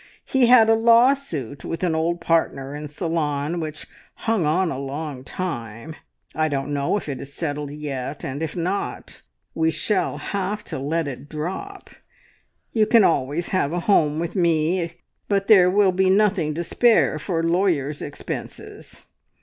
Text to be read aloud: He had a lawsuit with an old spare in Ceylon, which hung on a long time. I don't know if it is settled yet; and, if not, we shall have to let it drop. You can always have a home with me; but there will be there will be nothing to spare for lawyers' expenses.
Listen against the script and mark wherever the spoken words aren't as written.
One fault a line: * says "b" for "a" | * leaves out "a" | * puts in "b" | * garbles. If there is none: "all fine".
* says "partner" for "spare"
* leaves out "there will be"